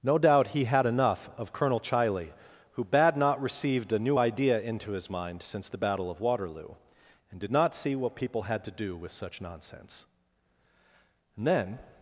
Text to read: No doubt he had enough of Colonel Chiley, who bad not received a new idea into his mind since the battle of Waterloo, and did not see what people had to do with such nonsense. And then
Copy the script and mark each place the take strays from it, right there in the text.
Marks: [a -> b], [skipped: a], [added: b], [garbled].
No doubt he had enough of Colonel Chiley, who bad not received a new idea into his mind since the battle of Waterloo, and did not see what people had to do with such nonsense. And then